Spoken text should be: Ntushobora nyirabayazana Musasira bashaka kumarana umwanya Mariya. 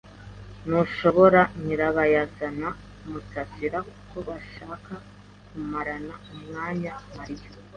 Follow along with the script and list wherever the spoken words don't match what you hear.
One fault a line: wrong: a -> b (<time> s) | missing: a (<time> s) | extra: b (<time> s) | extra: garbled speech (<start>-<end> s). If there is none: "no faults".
extra: kuko (3.9 s)